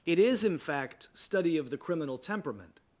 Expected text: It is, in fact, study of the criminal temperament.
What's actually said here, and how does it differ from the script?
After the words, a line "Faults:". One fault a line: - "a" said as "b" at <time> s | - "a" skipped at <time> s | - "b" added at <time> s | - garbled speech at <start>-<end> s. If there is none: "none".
It is, in fact, study of the criminal temperament.
Faults:
none